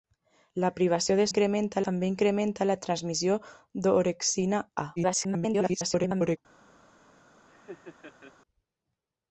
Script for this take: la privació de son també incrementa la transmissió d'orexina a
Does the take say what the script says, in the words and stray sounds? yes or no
no